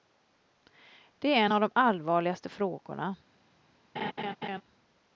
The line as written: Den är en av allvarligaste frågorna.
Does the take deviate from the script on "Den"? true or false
true